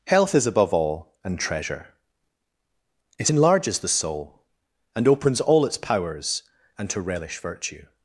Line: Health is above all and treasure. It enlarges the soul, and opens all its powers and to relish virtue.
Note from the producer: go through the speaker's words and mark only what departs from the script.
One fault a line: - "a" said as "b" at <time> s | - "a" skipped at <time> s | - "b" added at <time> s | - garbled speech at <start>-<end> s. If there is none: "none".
none